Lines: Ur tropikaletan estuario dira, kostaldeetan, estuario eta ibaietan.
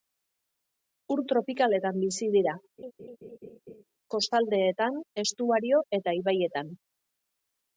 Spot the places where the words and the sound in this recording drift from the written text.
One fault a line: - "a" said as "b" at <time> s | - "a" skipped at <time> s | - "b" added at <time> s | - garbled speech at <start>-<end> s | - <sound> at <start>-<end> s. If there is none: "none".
- "estuario" said as "bizi" at 2.0 s
- laugh at 2.8-3.8 s